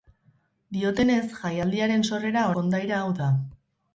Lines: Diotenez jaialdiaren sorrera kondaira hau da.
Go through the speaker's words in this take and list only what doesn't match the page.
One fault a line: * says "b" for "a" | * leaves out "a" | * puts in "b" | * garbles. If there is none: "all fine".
all fine